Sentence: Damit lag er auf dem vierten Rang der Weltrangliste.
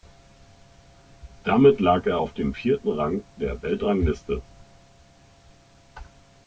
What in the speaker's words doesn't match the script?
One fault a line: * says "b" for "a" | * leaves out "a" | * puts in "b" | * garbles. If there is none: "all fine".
all fine